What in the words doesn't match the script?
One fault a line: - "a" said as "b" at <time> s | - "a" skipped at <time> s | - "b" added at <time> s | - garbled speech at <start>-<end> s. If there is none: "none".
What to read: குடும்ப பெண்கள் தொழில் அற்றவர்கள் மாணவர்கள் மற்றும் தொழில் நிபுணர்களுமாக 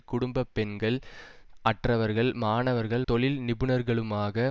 - "தொழில்" skipped at 1.0 s
- "மற்றும்" skipped at 3.0 s